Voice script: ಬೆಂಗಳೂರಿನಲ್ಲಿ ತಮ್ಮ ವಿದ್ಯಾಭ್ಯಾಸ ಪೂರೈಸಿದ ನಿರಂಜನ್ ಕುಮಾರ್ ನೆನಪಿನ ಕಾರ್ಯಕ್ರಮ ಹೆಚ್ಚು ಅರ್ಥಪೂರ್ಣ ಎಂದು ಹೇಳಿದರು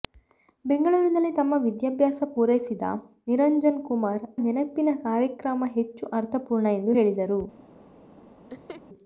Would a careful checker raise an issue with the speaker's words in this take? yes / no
no